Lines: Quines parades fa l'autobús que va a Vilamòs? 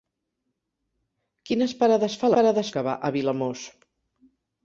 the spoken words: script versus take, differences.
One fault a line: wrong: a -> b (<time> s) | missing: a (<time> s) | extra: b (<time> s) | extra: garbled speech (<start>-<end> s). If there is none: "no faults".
wrong: l'autobús -> parades (2.4 s)